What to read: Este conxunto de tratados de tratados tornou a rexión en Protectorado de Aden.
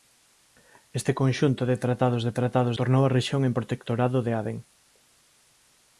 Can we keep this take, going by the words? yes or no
yes